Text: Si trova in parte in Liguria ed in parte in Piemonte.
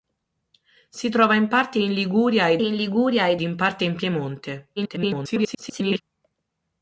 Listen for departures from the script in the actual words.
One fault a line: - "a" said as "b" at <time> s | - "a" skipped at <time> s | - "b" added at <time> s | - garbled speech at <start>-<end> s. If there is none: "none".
- "Liguria ed in" added at 2.8 s
- garbled speech at 4.8-6.0 s